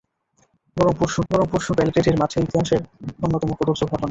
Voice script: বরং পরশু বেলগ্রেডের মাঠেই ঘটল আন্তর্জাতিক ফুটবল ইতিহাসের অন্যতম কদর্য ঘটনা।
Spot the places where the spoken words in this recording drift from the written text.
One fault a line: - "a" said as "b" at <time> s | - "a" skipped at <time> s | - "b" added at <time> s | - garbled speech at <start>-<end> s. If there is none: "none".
- "বরং পরশু" added at 1.3 s
- "ঘটল আন্তর্জাতিক ফুটবল" skipped at 2.5 s